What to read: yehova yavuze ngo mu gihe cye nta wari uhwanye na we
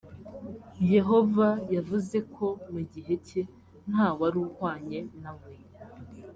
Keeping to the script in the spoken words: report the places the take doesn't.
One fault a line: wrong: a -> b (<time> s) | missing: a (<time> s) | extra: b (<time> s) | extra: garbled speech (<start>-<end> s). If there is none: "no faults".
wrong: ngo -> ko (2.4 s)